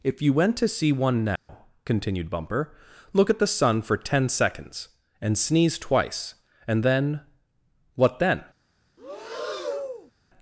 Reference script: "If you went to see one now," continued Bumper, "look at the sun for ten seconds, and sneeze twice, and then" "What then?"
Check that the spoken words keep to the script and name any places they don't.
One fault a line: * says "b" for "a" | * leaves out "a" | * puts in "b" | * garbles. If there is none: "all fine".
all fine